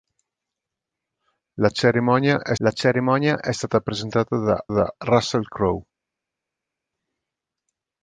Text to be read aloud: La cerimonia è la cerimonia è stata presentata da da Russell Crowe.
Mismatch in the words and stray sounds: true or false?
false